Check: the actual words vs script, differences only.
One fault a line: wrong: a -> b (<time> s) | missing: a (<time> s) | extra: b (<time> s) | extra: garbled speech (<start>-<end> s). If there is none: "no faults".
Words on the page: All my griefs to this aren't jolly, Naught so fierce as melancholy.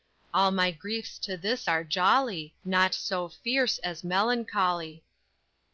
wrong: aren't -> are (1.7 s)